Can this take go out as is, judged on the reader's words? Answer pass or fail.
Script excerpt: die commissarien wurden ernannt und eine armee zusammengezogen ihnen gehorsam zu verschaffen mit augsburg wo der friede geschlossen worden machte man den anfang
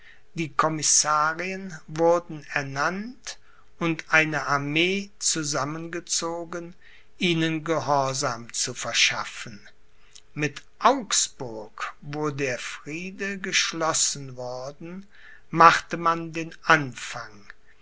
pass